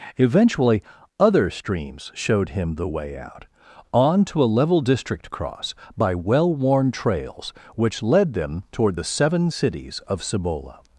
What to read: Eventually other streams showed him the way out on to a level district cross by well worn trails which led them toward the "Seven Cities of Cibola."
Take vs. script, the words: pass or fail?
pass